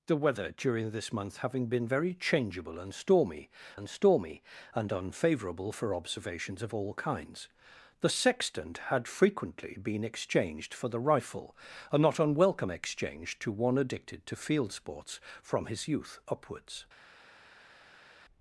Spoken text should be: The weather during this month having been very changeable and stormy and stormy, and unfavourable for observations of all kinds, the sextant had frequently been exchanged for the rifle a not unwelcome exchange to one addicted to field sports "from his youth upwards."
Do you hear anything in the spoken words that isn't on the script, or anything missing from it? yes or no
no